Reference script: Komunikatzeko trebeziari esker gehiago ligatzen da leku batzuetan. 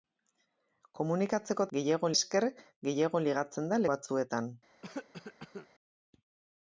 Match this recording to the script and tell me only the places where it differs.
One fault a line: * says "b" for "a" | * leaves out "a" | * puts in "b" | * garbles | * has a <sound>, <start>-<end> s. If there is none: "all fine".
* says "gehiago" for "trebeziari"
* leaves out "leku"
* has a cough, 4.8-5.7 s